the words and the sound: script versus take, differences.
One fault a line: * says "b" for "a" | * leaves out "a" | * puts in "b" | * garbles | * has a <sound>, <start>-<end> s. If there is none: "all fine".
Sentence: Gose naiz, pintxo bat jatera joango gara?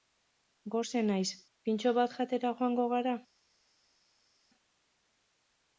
all fine